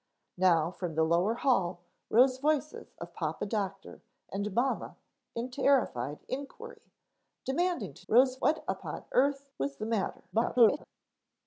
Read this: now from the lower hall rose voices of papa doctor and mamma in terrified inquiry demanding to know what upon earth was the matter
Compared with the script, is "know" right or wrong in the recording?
wrong